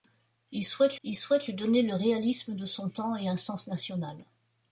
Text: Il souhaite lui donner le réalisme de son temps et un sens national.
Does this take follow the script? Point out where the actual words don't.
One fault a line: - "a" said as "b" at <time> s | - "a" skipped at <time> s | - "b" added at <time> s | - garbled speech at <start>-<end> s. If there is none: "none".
- "il souhaite" added at 1.0 s